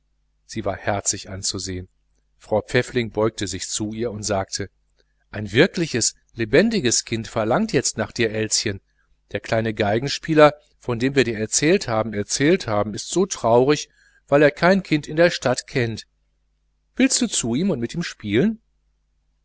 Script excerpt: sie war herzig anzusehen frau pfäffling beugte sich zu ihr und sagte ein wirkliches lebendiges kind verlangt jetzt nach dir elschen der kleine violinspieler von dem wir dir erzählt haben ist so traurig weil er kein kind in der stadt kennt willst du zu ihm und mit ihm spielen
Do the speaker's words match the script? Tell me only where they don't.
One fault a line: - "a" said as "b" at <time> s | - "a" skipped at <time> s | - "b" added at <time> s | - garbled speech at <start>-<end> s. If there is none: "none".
- "erzählt haben" added at 12.1 s